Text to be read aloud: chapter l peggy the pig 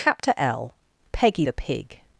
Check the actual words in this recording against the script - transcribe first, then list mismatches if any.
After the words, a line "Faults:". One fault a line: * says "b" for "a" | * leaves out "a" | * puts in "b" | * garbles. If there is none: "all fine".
chapter l peggy the pig
Faults:
all fine